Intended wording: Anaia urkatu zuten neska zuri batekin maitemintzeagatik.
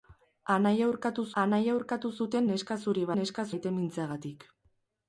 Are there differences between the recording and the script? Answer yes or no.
yes